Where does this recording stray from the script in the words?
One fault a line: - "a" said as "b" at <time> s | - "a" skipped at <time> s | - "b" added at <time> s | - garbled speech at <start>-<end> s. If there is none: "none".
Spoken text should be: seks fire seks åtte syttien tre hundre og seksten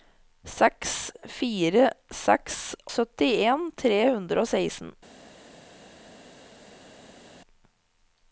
- "åtte" skipped at 2.6 s